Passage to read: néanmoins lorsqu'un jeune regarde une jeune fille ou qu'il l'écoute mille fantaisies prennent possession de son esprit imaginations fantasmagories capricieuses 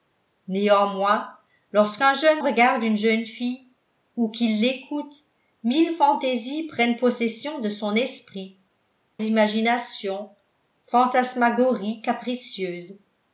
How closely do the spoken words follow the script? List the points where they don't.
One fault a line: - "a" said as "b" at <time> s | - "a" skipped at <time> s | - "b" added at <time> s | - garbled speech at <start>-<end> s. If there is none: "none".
none